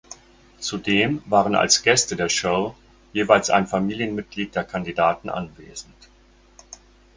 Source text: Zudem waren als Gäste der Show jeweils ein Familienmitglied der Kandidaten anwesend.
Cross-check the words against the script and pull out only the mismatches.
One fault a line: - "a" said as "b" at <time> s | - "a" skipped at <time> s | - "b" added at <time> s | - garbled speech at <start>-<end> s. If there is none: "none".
none